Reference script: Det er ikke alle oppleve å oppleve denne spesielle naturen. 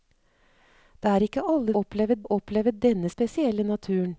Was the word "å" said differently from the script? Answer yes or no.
no